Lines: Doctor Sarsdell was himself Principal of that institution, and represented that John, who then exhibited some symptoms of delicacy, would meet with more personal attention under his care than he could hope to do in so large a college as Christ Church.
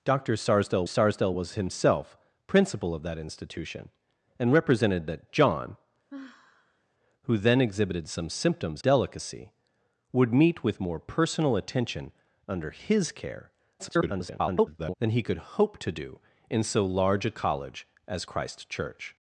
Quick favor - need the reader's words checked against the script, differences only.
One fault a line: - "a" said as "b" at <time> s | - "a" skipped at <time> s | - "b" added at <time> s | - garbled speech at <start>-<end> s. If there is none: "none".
- "Sarsdell" added at 0.8 s
- "of" skipped at 8.8 s
- garbled speech at 13.8-14.9 s